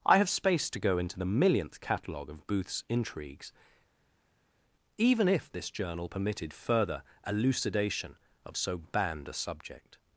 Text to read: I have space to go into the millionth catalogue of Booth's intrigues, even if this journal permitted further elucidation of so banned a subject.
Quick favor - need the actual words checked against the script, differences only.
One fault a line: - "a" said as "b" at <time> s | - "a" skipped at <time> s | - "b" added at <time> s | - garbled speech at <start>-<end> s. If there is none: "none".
none